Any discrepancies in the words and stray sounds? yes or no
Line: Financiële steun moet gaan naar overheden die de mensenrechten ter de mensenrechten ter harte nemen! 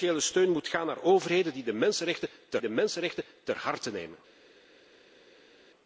no